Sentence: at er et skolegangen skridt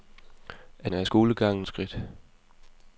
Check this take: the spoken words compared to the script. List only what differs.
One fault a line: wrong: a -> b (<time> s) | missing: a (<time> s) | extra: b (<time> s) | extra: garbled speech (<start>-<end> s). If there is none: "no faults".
no faults